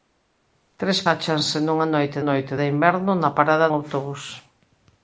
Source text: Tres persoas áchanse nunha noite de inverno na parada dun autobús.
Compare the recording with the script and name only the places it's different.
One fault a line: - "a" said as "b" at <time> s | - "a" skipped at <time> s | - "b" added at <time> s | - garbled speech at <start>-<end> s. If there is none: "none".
- "persoas" skipped at 1.0 s
- "noite" added at 2.3 s
- "dun" skipped at 3.7 s